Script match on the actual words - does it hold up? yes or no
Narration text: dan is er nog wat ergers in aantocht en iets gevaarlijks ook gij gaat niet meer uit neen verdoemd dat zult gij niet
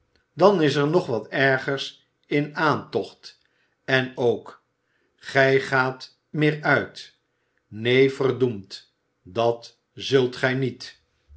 no